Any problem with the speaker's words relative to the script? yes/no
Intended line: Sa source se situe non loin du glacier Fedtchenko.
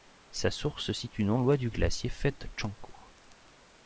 no